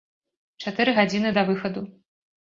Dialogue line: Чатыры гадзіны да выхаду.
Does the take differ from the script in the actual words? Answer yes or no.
no